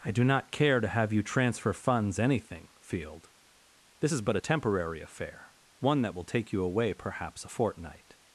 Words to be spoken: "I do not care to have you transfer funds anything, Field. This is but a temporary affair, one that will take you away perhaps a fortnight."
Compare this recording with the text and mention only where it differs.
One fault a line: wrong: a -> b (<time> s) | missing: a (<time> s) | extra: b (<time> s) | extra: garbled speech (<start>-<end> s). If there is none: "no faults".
no faults